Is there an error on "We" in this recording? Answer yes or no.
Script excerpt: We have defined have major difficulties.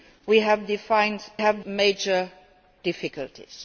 no